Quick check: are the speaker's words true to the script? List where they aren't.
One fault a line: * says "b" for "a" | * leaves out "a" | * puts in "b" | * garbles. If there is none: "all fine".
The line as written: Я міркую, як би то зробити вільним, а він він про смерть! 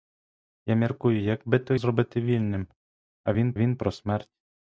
all fine